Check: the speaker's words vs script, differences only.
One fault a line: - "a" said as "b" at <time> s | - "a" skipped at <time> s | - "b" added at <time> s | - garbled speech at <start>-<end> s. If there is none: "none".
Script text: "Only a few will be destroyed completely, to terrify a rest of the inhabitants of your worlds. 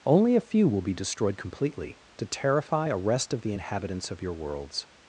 none